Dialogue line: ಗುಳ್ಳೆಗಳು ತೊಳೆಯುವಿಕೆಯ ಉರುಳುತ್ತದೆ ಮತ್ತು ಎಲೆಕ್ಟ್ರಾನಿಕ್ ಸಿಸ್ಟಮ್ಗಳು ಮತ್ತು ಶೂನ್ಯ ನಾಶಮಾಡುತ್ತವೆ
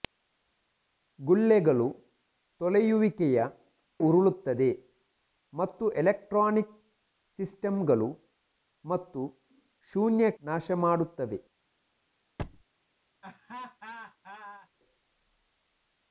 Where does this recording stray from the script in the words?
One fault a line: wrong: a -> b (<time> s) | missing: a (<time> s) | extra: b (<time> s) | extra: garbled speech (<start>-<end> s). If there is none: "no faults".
no faults